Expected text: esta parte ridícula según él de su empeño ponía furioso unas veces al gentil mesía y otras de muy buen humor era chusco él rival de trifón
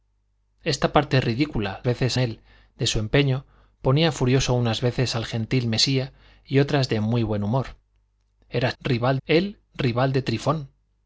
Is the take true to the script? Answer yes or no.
no